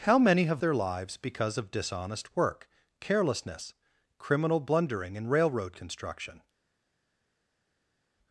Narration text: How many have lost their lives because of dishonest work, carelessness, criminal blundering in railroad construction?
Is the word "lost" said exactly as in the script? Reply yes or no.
no